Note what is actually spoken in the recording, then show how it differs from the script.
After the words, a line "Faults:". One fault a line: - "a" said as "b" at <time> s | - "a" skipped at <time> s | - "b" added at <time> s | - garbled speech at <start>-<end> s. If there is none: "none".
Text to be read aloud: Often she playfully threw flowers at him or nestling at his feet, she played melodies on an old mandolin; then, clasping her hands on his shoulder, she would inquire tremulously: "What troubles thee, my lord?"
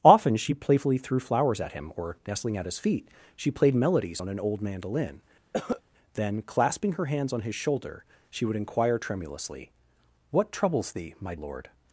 Often she playfully threw flowers at him or nestling at his feet, she played melodies on an old mandolin; then, clasping her hands on his shoulder, she would inquire tremulously: "What troubles thee, my lord?"
Faults:
none